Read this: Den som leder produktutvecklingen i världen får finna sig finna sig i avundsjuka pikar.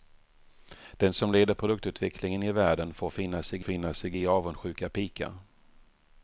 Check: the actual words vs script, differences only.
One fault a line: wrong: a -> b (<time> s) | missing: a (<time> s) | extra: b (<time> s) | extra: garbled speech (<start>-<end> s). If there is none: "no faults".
no faults